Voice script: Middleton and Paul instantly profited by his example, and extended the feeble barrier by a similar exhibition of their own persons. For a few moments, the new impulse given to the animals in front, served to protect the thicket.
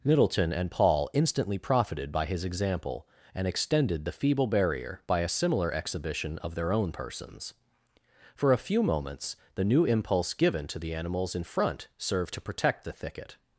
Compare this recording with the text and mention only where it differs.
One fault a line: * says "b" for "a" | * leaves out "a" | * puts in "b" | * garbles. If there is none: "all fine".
all fine